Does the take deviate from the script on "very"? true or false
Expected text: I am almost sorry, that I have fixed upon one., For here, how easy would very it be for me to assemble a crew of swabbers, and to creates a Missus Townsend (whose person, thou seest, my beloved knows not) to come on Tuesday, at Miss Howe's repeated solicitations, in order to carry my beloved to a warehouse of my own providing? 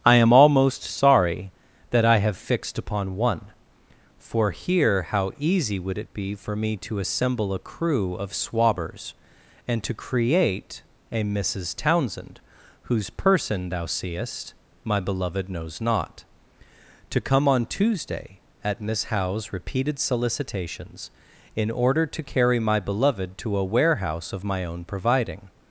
true